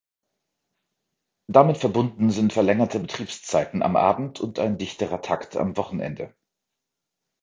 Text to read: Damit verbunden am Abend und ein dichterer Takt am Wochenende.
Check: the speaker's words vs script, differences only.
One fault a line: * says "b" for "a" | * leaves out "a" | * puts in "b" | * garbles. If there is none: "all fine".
* puts in "sind verlängerte Betriebszeiten"